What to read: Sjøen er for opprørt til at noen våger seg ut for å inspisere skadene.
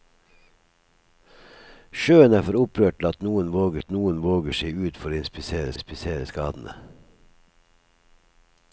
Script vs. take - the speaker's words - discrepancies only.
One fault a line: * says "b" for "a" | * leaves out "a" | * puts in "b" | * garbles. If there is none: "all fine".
* puts in "at noen våger"
* puts in "inspisere"